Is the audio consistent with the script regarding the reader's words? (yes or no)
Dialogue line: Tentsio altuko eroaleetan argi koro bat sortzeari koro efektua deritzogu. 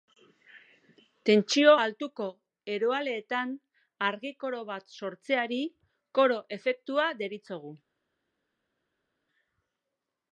yes